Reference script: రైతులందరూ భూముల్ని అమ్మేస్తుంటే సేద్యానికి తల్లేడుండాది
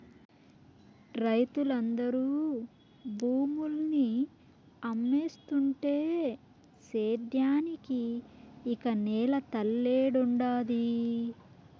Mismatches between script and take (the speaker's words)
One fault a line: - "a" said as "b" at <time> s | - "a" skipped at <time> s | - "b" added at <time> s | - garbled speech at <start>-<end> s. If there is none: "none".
- "ఇక నేల" added at 8.7 s